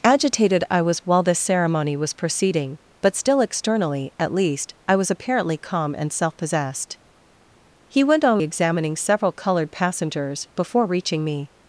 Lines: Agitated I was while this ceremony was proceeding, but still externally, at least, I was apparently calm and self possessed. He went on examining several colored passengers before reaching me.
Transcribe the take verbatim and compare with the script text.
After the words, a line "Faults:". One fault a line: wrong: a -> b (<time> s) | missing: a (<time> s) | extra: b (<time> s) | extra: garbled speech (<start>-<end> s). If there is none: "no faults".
Agitated I was while this ceremony was proceeding, but still externally, at least, I was apparently calm and self possessed. He went on examining several colored passengers before reaching me.
Faults:
no faults